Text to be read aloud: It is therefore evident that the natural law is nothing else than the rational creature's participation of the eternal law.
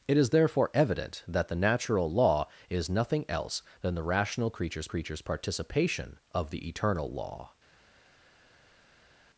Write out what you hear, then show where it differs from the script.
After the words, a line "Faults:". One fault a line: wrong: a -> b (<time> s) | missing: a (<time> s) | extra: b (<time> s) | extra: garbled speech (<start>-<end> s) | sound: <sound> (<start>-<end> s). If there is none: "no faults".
It is therefore evident that the natural law is nothing else than the rational creature's creature's participation of the eternal law.
Faults:
extra: creature's (4.8 s)